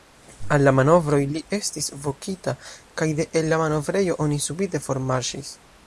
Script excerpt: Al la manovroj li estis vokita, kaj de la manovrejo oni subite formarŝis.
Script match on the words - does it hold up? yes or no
no